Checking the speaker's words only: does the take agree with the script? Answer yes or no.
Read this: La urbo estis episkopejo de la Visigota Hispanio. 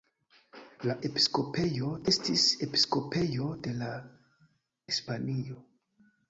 no